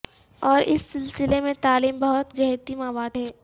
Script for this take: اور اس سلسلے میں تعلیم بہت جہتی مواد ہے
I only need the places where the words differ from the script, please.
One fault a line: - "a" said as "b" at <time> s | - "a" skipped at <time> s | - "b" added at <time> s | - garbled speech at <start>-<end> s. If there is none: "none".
none